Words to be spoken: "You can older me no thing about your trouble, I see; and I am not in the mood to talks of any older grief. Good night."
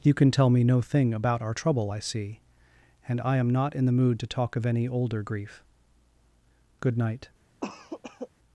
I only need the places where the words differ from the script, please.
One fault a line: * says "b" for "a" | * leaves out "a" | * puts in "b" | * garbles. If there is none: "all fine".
* says "tell" for "older"
* says "our" for "your"
* says "talk" for "talks"